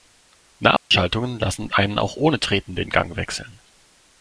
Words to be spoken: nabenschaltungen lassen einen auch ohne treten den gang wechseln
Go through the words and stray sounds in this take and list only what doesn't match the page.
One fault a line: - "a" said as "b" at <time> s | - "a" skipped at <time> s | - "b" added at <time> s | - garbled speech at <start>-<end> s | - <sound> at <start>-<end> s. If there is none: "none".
- dropout at 0.8-0.9 s